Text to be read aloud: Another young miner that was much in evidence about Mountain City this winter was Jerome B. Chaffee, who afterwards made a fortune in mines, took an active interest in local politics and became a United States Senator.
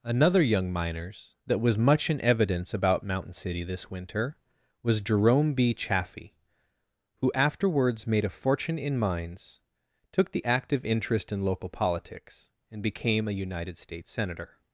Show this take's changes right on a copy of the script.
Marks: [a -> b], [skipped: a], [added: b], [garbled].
Another young [miner -> miners] that was much in evidence about Mountain City this winter was Jerome B. Chaffee, who afterwards made a fortune in mines, took [an -> the] active interest in local politics and became a United States Senator.